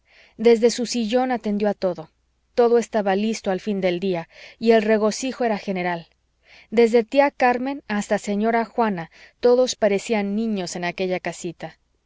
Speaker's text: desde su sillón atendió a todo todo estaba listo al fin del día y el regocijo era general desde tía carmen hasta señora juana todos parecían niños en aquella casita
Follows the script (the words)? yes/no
yes